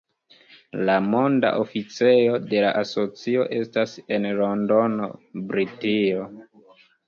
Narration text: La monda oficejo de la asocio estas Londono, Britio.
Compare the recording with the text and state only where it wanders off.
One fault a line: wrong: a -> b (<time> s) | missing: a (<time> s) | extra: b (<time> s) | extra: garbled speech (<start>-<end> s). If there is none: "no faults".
extra: en (4.2 s)